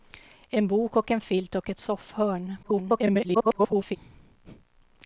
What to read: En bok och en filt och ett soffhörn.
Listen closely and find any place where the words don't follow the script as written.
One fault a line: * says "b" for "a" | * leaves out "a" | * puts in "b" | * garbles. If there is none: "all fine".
* garbles